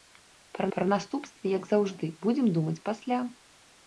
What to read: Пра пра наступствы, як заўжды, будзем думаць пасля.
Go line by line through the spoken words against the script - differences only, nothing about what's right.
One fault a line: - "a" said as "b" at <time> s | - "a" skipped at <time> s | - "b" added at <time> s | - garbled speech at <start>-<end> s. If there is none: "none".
none